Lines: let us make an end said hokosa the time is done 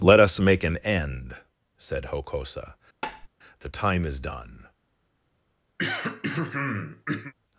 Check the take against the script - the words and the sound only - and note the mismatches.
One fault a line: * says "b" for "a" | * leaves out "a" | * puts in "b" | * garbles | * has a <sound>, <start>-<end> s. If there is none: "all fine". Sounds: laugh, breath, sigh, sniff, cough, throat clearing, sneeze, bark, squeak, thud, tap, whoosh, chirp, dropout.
* has a tap, 3.0-3.3 s
* has a throat clearing, 5.8-7.3 s